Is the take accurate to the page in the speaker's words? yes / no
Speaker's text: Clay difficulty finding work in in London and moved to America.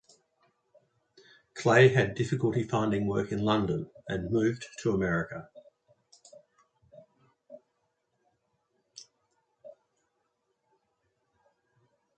no